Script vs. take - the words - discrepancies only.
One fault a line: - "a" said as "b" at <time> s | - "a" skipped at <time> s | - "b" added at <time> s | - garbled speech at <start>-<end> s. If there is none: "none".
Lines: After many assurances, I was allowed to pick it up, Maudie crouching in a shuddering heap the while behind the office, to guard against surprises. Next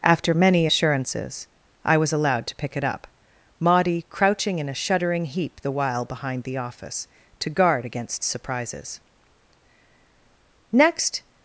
none